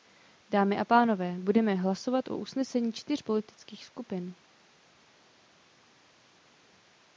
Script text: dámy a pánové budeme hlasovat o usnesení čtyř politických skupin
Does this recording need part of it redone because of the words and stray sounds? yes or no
no